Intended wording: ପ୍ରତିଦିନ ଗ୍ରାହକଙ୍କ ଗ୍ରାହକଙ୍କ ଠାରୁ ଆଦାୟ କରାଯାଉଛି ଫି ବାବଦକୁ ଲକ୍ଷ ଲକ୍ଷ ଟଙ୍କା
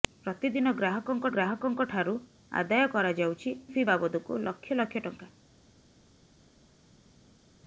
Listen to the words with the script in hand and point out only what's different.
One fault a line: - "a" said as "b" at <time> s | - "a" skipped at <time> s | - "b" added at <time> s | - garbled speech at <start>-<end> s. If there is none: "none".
none